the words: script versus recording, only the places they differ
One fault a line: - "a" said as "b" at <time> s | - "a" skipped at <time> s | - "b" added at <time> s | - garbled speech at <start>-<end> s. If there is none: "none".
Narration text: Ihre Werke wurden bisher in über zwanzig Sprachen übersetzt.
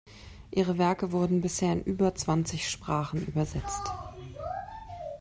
none